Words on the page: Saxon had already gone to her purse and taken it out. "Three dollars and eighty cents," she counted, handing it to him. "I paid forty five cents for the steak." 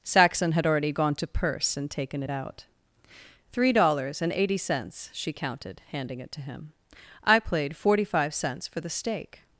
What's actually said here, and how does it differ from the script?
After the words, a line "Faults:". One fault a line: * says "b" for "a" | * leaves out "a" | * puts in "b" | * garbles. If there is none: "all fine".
Saxon had already gone to purse and taken it out. "Three dollars and eighty cents," she counted, handing it to him. "I played forty five cents for the steak."
Faults:
* leaves out "her"
* says "played" for "paid"